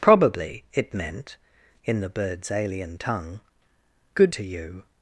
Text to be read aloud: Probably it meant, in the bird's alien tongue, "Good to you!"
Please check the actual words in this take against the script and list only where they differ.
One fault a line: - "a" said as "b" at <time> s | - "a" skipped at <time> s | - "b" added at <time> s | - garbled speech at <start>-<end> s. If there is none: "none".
none